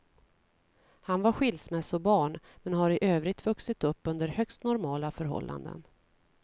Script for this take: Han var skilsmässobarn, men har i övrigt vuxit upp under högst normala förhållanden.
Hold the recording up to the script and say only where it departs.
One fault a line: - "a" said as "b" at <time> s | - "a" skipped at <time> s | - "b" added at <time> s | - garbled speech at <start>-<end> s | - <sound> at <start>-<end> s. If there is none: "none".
none